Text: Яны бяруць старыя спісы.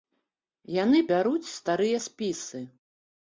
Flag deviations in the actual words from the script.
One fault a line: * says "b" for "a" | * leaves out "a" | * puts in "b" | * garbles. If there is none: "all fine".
all fine